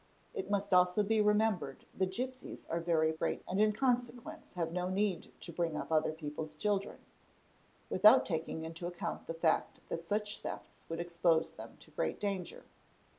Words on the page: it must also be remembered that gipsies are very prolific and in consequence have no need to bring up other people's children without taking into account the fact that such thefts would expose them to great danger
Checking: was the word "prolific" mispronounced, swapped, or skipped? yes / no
yes